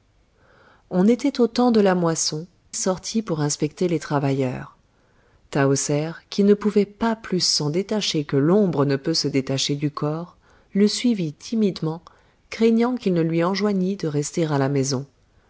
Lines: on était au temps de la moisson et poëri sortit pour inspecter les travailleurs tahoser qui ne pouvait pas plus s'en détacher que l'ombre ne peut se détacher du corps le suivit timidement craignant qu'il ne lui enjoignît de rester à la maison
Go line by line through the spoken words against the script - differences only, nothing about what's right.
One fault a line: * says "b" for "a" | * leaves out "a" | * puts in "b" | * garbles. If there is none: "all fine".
* leaves out "et poëri"